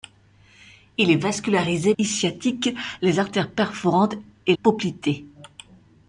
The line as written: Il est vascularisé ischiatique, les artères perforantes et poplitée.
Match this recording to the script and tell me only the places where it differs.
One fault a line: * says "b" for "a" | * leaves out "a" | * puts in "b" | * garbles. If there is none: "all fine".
all fine